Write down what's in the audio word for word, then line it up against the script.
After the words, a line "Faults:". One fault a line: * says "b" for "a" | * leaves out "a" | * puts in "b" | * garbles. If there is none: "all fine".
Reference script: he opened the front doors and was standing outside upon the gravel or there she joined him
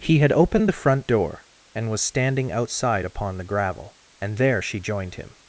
he had opened the front door and was standing outside upon the gravel and there she joined him
Faults:
* puts in "had"
* says "door" for "doors"
* says "and" for "or"